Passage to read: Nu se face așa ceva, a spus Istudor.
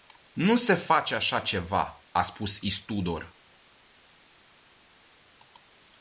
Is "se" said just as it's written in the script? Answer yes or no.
yes